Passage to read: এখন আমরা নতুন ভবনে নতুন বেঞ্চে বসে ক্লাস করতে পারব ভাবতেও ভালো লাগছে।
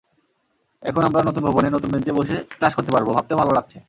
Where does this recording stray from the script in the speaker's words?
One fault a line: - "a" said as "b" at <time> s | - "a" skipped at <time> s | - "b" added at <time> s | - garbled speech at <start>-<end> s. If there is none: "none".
none